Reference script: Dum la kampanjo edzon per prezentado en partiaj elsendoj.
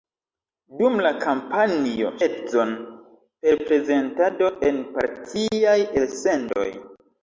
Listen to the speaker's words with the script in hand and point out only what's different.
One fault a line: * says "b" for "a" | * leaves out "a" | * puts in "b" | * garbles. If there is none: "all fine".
all fine